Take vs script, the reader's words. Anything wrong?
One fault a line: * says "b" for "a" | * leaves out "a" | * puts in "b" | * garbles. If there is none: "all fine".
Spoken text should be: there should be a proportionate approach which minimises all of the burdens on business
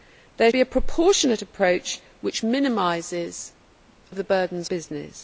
* leaves out "should"
* leaves out "all"
* leaves out "on"